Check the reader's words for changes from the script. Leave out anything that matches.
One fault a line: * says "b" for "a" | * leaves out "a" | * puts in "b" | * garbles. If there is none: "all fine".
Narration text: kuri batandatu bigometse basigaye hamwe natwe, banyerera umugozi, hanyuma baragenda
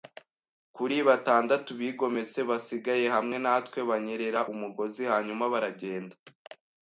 all fine